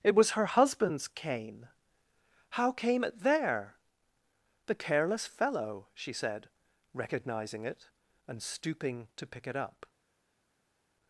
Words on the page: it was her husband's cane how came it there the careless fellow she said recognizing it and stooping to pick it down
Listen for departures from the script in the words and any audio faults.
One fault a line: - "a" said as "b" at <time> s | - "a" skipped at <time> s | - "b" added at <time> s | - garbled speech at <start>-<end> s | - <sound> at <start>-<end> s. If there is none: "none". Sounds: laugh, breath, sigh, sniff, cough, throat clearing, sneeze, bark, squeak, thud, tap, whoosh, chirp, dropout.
- "down" said as "up" at 9.6 s